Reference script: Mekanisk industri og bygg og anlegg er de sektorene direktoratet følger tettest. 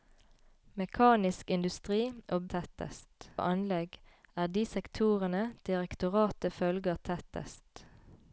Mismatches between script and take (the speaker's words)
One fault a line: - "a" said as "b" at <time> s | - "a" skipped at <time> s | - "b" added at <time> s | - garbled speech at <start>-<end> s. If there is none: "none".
- "bygg" said as "tettest" at 2.5 s